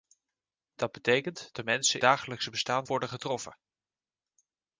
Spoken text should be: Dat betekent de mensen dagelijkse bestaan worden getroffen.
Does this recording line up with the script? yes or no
yes